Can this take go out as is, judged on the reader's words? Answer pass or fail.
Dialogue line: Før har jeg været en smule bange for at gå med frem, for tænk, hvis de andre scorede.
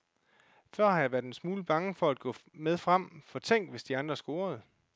pass